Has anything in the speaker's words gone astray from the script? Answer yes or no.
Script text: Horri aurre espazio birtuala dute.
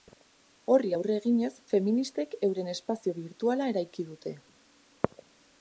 yes